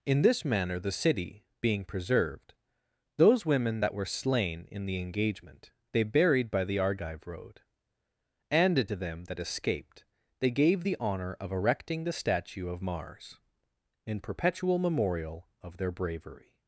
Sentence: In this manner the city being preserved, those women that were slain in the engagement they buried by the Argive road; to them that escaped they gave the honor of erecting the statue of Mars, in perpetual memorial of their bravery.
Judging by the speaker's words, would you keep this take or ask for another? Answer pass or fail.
fail